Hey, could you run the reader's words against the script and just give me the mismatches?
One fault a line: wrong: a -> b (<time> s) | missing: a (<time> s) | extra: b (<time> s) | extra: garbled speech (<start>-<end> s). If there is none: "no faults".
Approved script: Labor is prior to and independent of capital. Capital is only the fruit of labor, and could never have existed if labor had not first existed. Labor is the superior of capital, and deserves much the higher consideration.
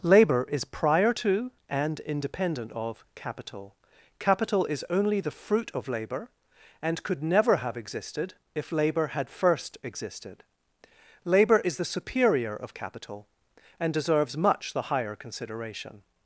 missing: not (9.3 s)